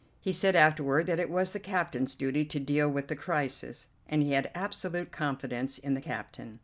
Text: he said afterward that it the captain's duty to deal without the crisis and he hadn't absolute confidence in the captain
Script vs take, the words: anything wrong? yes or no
yes